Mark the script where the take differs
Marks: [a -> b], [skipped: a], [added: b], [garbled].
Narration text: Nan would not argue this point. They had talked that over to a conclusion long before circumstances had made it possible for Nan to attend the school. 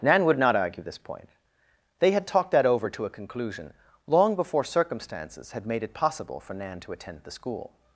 Nan would not argue this point. They had talked that over to a conclusion long before circumstances had made it possible for Nan to attend the school.